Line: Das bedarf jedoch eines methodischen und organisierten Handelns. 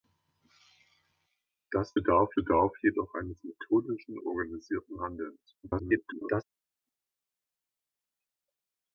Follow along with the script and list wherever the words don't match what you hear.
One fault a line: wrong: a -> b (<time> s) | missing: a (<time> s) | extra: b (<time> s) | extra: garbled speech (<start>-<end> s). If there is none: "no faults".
extra: bedarf (2.3 s)
missing: und (4.2 s)
extra: garbled speech (5.6-6.4 s)